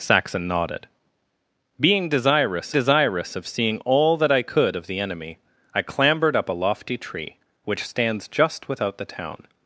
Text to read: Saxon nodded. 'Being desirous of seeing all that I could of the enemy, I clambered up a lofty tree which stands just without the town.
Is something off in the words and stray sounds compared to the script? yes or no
yes